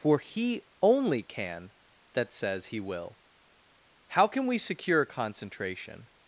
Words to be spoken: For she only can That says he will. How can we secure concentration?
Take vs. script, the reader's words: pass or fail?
fail